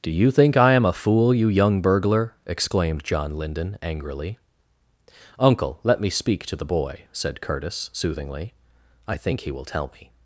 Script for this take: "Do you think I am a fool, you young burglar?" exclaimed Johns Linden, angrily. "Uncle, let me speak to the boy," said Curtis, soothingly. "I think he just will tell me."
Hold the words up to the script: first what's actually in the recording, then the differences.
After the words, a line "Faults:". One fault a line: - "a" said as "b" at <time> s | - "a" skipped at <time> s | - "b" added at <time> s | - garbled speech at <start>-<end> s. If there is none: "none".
"Do you think I am a fool, you young burglar?" exclaimed John Linden, angrily. "Uncle, let me speak to the boy," said Curtis, soothingly. "I think he will tell me."
Faults:
- "Johns" said as "John" at 3.0 s
- "just" skipped at 9.5 s